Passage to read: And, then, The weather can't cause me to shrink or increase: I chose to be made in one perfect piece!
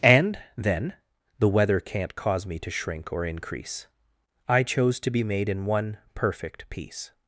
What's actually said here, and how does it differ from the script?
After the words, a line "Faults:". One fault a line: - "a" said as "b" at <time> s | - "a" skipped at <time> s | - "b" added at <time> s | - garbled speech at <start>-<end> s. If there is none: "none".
And, then, The weather can't cause me to shrink or increase: I chose to be made in one perfect piece!
Faults:
none